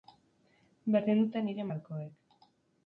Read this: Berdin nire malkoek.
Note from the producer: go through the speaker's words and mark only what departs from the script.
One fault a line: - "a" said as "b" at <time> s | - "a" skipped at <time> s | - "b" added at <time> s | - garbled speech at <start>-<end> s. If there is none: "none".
- "dute" added at 1.2 s